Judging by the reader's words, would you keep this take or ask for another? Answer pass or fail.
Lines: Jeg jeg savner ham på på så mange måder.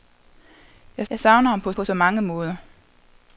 pass